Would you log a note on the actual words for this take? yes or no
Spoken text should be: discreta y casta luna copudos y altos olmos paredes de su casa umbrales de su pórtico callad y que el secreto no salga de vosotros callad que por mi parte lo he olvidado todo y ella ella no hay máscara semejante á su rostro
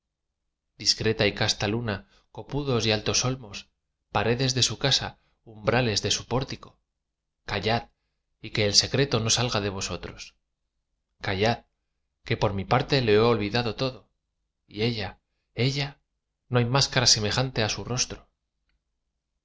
no